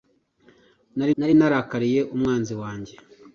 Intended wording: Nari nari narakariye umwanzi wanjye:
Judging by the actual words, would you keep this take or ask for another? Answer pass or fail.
pass